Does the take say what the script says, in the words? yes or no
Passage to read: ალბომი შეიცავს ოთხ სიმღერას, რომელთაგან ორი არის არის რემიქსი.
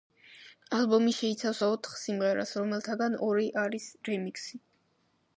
no